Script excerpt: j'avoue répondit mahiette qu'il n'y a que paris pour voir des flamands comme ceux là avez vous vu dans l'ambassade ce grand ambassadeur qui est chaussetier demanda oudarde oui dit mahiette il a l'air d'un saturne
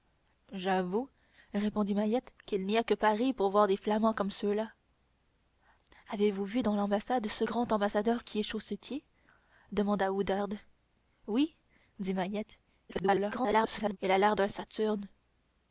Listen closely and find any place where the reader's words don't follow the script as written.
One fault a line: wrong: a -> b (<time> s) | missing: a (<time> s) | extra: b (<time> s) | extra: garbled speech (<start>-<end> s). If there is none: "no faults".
extra: garbled speech (12.9-14.0 s)